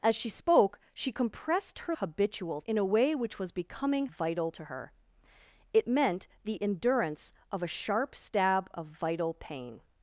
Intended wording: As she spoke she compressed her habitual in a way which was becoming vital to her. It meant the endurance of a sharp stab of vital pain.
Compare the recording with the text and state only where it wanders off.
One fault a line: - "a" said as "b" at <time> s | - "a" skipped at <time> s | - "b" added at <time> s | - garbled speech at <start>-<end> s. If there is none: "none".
none